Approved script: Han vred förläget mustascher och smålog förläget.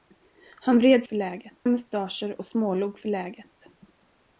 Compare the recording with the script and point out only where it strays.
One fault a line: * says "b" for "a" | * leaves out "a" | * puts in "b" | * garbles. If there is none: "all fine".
all fine